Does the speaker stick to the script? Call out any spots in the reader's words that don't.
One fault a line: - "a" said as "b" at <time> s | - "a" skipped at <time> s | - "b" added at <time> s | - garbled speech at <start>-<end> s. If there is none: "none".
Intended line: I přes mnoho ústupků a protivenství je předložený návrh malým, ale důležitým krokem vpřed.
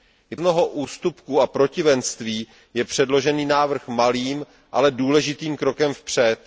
- "přes" skipped at 0.3 s